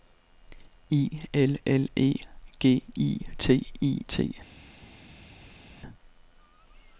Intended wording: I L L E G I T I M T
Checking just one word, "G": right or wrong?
right